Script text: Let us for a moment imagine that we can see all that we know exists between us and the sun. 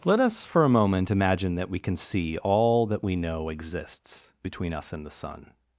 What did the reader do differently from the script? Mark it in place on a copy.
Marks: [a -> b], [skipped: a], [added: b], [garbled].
Let us for a moment imagine that we can see all that we know exists between us and the sun.